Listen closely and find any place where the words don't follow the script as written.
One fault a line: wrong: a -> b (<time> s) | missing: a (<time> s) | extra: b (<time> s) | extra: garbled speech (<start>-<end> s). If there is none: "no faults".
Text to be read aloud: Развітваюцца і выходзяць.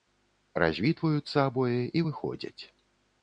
extra: абое (1.5 s)